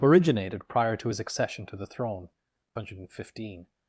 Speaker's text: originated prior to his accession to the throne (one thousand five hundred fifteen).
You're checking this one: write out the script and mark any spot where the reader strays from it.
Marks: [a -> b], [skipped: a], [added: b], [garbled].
originated prior to his accession to the throne [skipped: (one thousand five] hundred fifteen).